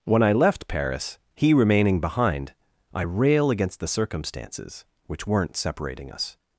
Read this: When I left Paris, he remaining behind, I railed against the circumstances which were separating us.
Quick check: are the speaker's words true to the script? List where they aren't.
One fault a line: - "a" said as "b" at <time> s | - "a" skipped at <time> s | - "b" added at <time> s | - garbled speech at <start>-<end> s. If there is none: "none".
- "railed" said as "rail" at 3.0 s
- "were" said as "weren't" at 5.2 s